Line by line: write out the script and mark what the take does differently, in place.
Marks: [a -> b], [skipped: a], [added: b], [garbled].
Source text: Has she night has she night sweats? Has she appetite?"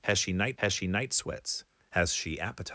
Has she night has she night sweats? Has she appetite?"